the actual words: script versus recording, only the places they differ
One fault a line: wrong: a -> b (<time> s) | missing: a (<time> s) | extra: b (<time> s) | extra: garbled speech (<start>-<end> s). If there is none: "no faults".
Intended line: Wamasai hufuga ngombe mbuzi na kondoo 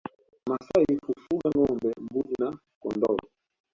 no faults